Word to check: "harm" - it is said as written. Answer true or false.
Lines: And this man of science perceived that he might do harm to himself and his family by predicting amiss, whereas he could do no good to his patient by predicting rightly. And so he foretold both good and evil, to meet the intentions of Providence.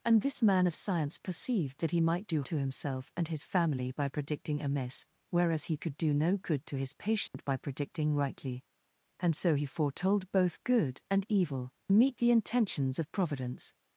false